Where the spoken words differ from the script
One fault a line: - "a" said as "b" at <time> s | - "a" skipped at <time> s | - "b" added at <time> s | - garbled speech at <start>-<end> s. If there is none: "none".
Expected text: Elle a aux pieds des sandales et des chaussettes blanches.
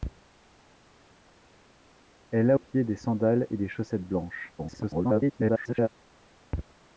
- "aux" skipped at 2.6 s
- garbled speech at 4.6-5.9 s